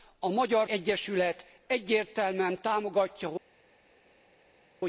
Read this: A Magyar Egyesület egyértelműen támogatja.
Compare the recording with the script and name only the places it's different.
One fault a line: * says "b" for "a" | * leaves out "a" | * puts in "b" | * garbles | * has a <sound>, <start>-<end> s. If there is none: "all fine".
all fine